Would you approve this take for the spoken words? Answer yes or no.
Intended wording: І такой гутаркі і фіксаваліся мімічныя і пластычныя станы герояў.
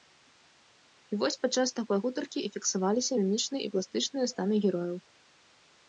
no